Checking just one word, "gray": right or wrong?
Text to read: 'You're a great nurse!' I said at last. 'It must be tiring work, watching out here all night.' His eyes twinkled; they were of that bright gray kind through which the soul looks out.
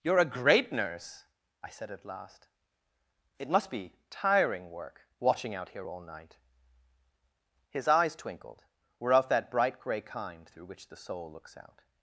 right